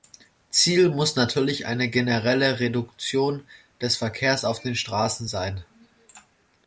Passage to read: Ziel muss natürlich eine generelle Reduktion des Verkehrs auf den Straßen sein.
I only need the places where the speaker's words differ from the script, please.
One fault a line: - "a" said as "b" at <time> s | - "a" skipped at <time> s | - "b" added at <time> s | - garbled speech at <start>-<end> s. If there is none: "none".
none